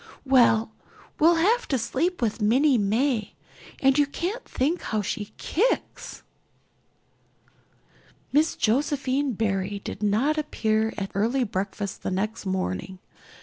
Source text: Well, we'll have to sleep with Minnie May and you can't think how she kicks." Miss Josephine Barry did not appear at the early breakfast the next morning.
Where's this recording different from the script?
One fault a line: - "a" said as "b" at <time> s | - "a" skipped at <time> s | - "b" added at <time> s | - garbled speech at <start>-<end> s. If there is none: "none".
- "the" skipped at 11.2 s